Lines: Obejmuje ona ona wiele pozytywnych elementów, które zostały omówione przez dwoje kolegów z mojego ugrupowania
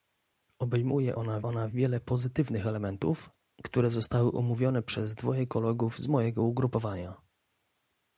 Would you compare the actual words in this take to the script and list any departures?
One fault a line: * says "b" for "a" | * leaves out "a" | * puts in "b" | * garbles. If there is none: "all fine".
all fine